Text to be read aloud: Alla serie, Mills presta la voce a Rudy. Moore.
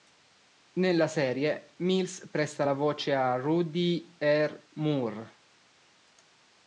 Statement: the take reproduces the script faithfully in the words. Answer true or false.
false